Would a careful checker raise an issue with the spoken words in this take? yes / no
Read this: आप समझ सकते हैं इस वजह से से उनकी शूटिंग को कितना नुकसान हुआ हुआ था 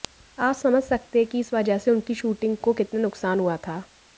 yes